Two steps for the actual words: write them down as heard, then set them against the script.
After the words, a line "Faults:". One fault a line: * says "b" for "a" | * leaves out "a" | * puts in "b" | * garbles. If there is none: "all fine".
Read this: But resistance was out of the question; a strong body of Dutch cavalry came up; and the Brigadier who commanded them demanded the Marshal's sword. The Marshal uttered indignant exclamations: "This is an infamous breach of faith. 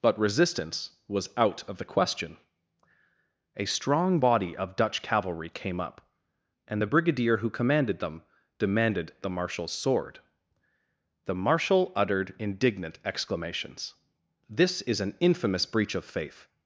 But resistance was out of the question; a strong body of Dutch cavalry came up; and the Brigadier who commanded them demanded the Marshal's sword. The Marshal uttered indignant exclamations: "This is an infamous breach of faith.
Faults:
all fine